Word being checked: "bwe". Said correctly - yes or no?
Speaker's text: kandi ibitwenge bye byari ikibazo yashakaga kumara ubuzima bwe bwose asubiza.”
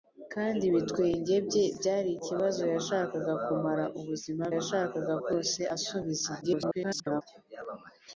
no